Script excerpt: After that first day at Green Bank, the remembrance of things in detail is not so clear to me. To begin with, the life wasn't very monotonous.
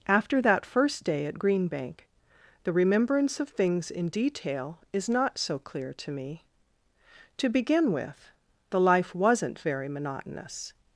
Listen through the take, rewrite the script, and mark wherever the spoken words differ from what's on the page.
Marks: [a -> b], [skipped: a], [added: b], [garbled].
After that first day at Green Bank, the remembrance of things in detail is not so clear to me. To begin with, the life wasn't very monotonous.